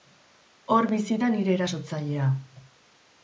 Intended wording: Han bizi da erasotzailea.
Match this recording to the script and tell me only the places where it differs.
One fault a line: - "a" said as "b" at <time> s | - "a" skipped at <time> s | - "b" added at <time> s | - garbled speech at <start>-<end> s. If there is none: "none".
- "Han" said as "Hor" at 0.8 s
- "nire" added at 1.3 s